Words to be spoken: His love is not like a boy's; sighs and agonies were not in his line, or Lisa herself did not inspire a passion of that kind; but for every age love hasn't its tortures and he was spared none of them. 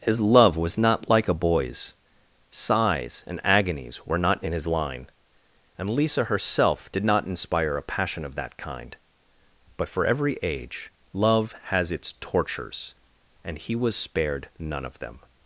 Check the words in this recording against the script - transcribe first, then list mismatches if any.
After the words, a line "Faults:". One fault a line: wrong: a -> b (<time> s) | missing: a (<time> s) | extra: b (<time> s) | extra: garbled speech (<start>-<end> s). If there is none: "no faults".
His love was not like a boy's; sighs and agonies were not in his line, and Lisa herself did not inspire a passion of that kind; but for every age love has its tortures and he was spared none of them.
Faults:
wrong: is -> was (0.6 s)
wrong: or -> and (5.8 s)
wrong: hasn't -> has (11.7 s)